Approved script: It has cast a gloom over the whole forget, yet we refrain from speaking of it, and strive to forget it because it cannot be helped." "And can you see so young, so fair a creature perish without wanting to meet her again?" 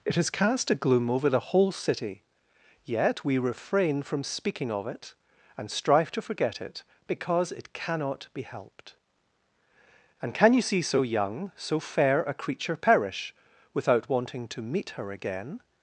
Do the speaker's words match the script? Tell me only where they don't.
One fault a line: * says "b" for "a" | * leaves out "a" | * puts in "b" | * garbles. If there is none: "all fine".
* says "city" for "forget"